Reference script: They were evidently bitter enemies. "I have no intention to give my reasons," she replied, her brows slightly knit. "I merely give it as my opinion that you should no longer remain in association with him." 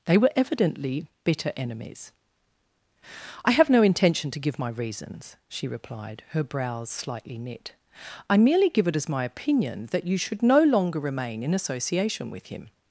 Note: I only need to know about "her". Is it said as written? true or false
true